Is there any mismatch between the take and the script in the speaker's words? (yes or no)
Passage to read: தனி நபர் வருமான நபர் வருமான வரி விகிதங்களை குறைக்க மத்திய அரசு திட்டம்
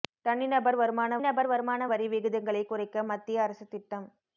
no